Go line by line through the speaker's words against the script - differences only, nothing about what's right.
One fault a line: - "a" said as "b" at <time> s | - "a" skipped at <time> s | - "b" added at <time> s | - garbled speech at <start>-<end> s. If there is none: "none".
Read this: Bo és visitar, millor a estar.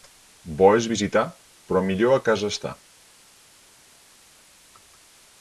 - "però" added at 1.7 s
- "casa" added at 2.3 s